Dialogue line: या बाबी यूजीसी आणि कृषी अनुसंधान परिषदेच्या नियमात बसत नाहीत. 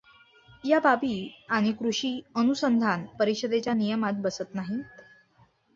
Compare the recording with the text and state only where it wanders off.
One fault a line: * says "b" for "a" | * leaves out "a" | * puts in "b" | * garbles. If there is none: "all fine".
* leaves out "यूजीसी"